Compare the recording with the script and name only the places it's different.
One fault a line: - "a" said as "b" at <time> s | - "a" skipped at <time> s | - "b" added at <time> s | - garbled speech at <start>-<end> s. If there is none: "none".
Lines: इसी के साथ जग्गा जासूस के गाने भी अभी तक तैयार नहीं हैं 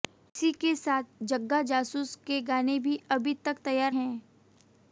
- "नहीं" skipped at 4.0 s